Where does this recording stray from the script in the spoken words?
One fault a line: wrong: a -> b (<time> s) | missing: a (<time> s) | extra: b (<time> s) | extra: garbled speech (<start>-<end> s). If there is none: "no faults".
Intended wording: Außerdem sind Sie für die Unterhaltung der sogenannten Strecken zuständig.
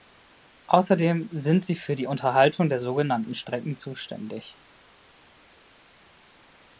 no faults